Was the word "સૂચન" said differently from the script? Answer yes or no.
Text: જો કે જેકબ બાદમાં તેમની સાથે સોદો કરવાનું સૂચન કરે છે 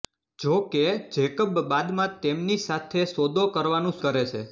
yes